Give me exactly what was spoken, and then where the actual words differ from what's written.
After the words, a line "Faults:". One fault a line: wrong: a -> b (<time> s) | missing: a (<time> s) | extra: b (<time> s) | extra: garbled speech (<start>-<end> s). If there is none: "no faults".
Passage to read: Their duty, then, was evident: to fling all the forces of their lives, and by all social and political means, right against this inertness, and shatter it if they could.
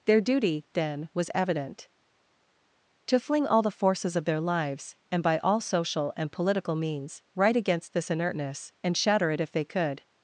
Their duty, then, was evident: to fling all the forces of their lives, and by all social and political means, right against this inertness, and shatter it if they could.
Faults:
no faults